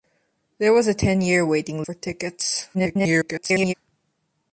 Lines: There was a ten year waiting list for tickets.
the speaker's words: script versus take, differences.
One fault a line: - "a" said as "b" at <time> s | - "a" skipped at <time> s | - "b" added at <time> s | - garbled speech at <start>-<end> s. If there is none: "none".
- "list" skipped at 1.8 s
- garbled speech at 2.7-3.7 s